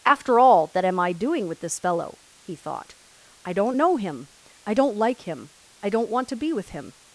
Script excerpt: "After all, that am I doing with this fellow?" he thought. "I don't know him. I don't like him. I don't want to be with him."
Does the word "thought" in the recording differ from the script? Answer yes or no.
no